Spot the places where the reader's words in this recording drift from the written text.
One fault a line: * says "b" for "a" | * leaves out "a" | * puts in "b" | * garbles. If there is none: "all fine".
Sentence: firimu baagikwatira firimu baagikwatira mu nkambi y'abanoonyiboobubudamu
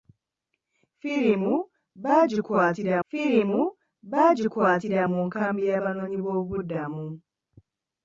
all fine